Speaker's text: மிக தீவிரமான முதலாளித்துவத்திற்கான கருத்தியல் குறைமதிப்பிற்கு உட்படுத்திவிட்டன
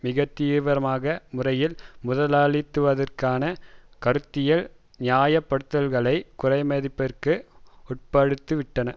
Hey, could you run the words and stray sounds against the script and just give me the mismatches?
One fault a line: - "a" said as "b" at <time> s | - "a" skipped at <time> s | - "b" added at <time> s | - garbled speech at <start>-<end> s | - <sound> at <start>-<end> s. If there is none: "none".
- "முறையில்" added at 1.3 s
- "நியாயப்படுத்தல்களை" added at 5.0 s